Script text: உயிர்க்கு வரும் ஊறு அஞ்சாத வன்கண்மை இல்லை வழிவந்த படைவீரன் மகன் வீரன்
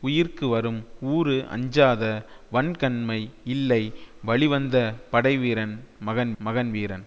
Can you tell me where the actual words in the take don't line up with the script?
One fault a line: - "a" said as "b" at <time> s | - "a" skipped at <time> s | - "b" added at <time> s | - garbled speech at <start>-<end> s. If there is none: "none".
- "மகன்" added at 6.4 s